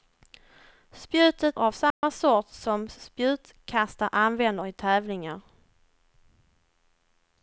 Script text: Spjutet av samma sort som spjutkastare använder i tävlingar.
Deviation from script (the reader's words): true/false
false